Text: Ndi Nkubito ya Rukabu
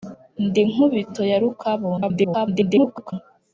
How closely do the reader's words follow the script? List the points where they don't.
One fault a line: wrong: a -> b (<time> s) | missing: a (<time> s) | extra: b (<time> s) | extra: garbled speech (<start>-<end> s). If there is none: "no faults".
extra: garbled speech (2.0-3.1 s)